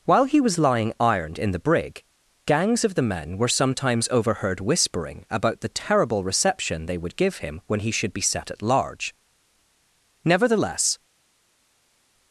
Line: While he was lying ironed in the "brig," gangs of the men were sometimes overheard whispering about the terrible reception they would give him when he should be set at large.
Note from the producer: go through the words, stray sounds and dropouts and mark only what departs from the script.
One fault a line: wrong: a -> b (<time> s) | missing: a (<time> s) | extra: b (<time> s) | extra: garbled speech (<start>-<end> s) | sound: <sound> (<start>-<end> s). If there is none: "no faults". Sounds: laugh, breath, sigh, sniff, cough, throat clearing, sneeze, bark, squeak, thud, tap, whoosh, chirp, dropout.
extra: Nevertheless (10.2 s)